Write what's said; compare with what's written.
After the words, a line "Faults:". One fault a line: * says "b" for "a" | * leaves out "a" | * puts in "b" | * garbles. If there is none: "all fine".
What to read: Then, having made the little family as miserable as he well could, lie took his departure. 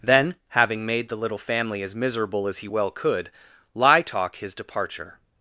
Then, having made the little family as miserable as he well could, lie talk his departure.
Faults:
* says "talk" for "took"